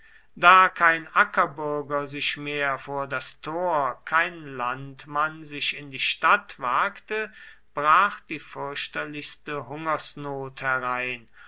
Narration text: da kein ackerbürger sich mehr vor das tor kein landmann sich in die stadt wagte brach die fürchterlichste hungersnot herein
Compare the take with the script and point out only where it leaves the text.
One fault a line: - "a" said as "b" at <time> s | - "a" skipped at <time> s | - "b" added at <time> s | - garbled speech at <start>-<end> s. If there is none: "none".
none